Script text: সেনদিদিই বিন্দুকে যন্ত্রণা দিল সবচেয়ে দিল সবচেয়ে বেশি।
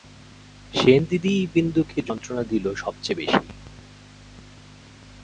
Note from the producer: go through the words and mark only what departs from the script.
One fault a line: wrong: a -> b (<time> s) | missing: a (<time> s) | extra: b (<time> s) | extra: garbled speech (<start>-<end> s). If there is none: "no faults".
missing: দিল সবচেয়ে (3.2 s)